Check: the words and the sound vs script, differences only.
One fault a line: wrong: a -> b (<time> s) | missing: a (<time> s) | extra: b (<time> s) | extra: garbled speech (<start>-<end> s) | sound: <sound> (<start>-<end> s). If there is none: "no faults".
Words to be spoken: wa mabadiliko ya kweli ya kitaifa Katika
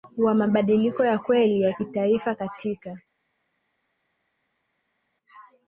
no faults